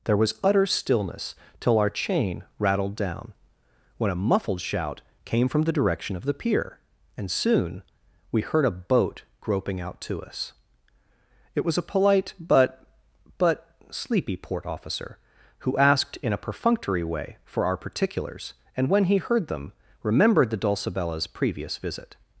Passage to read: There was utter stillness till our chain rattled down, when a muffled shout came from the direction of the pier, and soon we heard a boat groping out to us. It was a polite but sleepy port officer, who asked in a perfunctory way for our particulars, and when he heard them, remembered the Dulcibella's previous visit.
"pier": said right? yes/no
yes